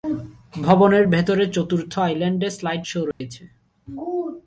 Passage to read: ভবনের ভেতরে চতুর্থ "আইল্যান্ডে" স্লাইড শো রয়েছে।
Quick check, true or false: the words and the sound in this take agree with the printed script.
false